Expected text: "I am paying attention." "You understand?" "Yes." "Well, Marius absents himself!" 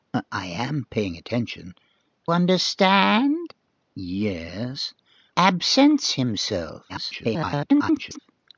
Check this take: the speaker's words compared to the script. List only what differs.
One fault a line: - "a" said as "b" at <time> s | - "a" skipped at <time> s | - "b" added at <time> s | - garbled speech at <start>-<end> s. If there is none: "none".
- "You" skipped at 1.7 s
- "Well Marius" skipped at 4.9 s
- garbled speech at 6.9-8.2 s